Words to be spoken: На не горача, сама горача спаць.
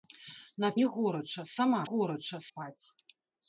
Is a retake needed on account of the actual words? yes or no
no